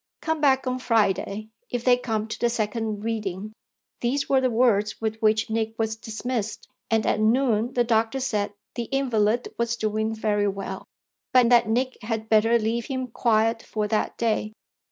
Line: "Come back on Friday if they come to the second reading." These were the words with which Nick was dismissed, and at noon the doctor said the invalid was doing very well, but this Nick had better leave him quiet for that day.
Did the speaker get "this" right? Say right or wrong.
wrong